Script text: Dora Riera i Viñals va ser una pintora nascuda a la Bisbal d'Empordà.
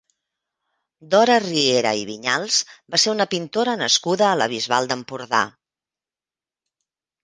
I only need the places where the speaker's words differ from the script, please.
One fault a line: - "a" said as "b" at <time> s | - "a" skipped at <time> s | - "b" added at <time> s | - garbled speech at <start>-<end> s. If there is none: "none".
none